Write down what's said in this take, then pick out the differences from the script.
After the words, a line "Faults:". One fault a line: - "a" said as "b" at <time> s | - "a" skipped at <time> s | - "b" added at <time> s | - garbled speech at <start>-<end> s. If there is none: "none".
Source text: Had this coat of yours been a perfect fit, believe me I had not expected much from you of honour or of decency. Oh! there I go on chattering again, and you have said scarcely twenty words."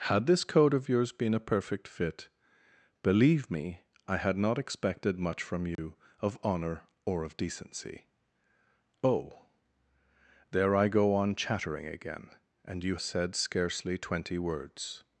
Had this coat of yours been a perfect fit, believe me I had not expected much from you of honour or of decency. Oh! there I go on chattering again, and you said scarcely twenty words."
Faults:
- "have" skipped at 13.0 s